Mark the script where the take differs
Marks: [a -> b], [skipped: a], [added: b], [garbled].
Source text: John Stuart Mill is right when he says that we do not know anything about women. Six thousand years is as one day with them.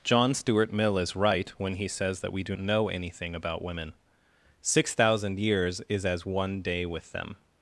John Stuart Mill is right when he says that we do [skipped: not] know anything about women. Six thousand years is as one day with them.